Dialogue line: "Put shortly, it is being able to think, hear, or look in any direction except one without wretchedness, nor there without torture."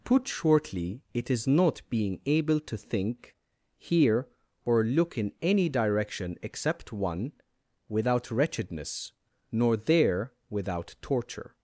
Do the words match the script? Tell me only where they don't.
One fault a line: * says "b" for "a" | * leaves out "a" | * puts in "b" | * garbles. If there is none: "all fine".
* puts in "not"